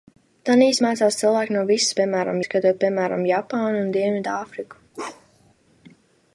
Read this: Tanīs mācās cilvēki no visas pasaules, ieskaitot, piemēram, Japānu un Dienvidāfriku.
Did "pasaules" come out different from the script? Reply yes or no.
yes